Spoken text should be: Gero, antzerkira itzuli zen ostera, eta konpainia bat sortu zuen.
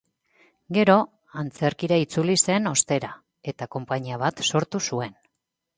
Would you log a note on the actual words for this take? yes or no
no